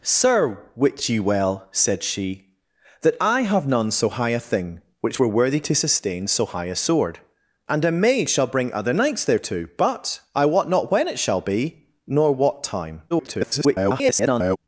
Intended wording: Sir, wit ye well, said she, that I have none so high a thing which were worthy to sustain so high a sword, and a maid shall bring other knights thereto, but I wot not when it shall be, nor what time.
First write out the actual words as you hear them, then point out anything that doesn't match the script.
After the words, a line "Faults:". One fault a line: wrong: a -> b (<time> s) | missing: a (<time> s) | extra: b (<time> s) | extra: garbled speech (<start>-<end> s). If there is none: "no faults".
Sir, wit ye well, said she, that I have none so high a thing which were worthy to sustain so high a sword, and a maid shall bring other knights thereto, but I wot not when it shall be, nor what time. [garbled]
Faults:
extra: garbled speech (13.1-14.6 s)